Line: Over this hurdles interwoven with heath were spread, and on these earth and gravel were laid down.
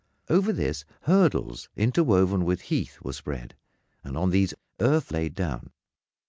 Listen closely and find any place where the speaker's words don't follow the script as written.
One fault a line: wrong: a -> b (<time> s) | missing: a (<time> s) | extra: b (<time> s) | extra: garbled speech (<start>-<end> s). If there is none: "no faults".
missing: and gravel were (5.1 s)